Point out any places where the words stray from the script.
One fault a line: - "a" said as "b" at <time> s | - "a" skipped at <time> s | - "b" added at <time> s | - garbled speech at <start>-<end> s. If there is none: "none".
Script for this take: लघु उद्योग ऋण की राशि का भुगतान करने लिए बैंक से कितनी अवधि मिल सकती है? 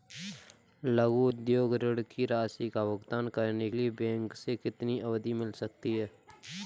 none